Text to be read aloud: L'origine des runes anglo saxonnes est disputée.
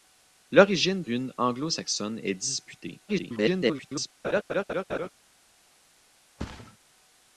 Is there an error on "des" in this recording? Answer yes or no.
yes